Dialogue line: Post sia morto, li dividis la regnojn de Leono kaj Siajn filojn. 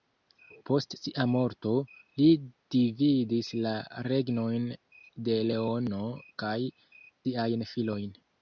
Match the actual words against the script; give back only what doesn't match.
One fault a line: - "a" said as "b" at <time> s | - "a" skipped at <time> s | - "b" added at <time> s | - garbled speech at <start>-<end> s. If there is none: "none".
none